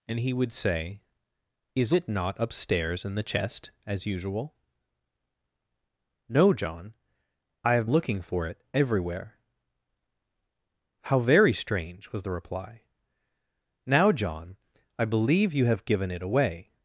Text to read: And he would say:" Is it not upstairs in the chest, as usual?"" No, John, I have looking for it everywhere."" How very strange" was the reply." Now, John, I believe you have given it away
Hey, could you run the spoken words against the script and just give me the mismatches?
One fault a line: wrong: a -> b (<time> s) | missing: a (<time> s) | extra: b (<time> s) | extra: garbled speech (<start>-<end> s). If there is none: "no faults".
no faults